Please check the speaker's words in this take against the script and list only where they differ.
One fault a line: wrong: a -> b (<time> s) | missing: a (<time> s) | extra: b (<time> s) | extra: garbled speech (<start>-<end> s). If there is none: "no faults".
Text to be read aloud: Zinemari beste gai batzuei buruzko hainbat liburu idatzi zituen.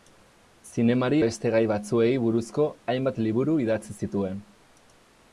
no faults